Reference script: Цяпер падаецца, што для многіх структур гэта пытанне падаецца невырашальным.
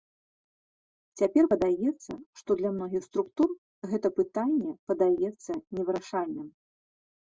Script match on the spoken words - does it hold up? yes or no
yes